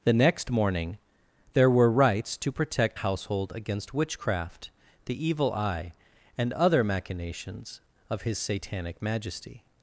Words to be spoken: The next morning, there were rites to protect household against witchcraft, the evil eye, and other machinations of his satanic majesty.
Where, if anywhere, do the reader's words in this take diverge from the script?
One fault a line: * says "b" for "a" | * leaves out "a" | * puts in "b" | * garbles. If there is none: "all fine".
all fine